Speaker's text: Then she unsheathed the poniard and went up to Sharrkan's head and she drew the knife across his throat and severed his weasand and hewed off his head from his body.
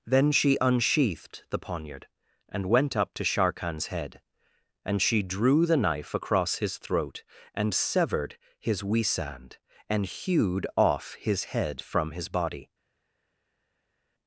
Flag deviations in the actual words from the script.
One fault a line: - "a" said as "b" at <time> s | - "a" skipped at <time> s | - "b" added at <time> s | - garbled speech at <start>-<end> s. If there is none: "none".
none